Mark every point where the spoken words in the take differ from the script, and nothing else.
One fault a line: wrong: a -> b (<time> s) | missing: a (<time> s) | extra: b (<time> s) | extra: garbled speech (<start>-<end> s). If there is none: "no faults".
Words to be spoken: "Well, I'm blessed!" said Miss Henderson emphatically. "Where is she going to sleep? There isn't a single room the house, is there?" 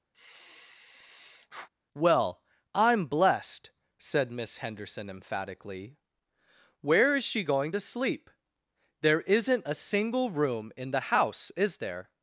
extra: in (10.8 s)